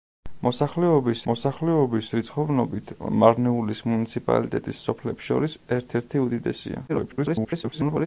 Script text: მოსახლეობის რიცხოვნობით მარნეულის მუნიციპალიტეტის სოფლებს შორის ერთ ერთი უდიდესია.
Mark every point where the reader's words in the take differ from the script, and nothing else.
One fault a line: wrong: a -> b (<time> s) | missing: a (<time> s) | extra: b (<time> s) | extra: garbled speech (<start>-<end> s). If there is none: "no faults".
extra: მოსახლეობის (1.3 s)
extra: garbled speech (6.9-8.1 s)